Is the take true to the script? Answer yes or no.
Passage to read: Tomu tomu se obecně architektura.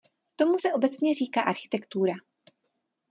no